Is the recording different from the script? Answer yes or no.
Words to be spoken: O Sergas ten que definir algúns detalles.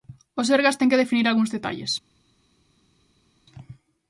no